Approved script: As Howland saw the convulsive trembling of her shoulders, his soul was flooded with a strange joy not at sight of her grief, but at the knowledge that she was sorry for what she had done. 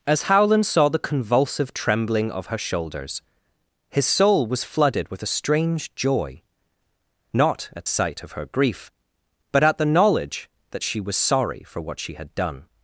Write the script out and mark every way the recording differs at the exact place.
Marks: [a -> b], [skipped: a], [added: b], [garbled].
As Howland saw the convulsive trembling of her shoulders, his soul was flooded with a strange joy not at sight of her grief, but at the knowledge that she was sorry for what she had done.